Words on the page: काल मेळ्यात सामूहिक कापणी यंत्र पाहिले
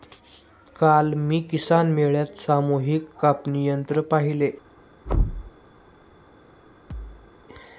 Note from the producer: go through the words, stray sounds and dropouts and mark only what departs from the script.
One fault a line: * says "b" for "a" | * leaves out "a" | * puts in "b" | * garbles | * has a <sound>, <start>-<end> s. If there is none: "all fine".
* puts in "मी किसान"
* has a thud, 5.1-5.5 s
* has a thud, 6.9-7.3 s